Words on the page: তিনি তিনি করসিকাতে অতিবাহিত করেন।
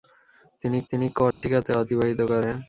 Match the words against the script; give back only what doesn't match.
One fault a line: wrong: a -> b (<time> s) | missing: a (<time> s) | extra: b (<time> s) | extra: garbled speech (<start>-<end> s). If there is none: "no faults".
no faults